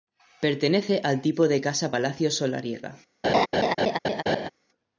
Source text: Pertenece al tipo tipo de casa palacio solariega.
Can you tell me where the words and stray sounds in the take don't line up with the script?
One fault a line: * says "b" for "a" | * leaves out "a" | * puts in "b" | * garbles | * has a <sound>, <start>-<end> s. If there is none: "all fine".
* leaves out "tipo"
* has a laugh, 3.2-4.5 s